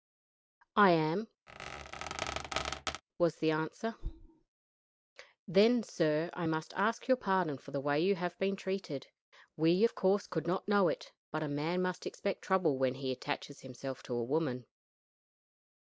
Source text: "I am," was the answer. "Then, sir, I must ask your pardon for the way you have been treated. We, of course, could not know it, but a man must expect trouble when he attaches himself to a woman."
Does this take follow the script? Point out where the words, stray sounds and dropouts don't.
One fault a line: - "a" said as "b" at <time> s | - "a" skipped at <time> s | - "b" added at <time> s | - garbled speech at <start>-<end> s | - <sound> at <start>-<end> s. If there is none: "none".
- squeak at 1.5-3.0 s